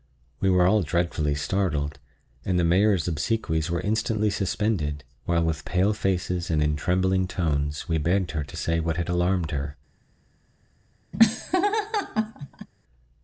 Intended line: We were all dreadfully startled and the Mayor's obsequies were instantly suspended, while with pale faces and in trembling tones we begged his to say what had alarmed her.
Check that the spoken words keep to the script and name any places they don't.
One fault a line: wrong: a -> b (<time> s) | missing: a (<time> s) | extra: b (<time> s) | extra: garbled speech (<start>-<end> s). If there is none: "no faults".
wrong: his -> her (8.3 s)